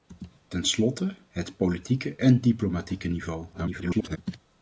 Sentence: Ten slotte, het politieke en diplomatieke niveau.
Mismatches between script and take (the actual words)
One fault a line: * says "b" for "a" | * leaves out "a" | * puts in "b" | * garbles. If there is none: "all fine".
* garbles